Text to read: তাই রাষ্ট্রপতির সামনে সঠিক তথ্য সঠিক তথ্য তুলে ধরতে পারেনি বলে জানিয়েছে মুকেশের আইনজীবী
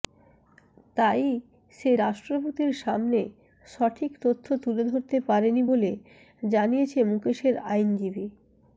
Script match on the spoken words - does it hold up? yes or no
no